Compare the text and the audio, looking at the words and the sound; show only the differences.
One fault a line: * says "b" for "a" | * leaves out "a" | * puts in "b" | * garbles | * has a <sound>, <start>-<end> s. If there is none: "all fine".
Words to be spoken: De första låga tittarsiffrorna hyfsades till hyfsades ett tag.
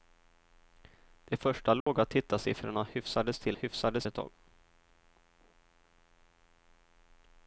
* has a dropout, 1.8-1.9 s